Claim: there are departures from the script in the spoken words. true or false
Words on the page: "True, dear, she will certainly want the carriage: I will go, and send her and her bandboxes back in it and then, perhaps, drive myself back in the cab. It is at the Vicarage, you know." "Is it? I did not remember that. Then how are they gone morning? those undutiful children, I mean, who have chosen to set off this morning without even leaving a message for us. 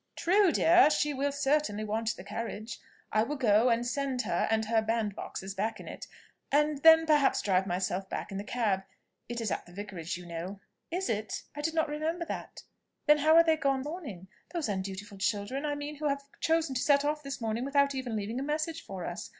false